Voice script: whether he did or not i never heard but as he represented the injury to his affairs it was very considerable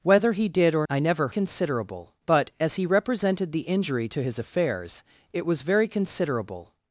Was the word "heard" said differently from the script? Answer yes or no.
yes